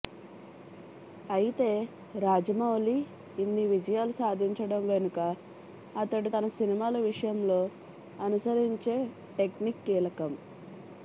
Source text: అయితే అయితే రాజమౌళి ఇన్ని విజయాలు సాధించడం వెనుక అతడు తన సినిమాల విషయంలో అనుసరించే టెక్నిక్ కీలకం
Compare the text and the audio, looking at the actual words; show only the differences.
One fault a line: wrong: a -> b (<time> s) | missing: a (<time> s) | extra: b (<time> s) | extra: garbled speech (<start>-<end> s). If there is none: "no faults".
missing: అయితే (1.7 s)